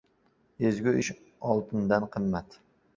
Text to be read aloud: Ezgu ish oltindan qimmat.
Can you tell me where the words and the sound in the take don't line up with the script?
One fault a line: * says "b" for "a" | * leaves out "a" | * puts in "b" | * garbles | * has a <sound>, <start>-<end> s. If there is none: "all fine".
all fine